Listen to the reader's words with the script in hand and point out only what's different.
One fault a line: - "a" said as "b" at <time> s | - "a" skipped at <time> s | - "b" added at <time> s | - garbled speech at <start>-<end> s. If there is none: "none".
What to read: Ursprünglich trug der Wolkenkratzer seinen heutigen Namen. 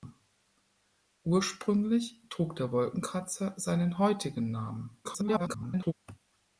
- garbled speech at 5.0-5.9 s